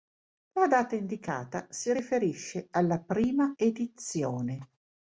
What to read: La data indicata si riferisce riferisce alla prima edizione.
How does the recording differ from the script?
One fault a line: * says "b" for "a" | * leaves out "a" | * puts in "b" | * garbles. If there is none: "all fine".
* leaves out "riferisce"